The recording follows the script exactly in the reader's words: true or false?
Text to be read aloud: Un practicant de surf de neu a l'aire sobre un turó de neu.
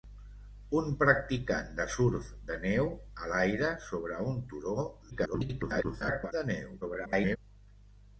false